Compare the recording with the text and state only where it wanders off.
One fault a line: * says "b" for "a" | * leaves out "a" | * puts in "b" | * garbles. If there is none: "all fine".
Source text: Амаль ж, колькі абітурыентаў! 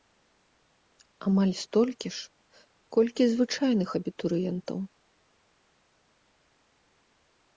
* puts in "столькі"
* puts in "звычайных"